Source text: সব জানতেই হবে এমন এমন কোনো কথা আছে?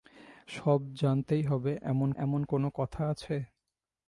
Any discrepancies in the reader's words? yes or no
no